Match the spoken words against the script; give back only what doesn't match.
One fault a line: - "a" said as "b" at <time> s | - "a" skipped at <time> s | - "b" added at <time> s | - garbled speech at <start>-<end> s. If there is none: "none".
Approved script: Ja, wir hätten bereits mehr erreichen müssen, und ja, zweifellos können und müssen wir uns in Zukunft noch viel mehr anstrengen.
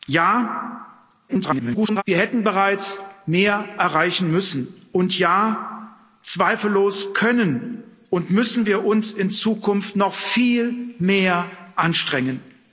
- garbled speech at 1.3-2.0 s